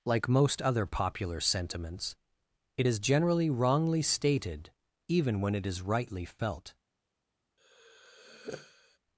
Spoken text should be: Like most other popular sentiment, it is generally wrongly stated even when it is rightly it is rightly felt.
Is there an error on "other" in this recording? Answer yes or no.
no